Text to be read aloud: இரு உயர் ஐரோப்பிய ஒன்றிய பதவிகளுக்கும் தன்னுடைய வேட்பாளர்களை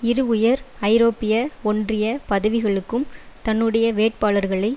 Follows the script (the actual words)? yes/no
yes